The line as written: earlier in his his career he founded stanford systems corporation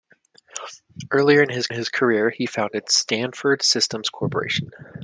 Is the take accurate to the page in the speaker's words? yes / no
yes